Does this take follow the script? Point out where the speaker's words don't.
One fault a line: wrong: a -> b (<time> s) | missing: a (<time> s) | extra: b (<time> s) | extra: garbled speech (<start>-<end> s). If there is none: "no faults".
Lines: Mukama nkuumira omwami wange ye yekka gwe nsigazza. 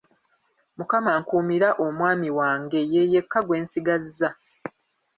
no faults